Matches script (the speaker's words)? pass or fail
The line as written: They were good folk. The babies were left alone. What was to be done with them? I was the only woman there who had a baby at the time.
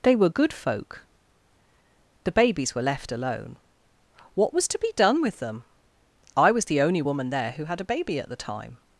pass